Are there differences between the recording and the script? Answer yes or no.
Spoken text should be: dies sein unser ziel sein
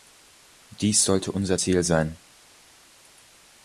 yes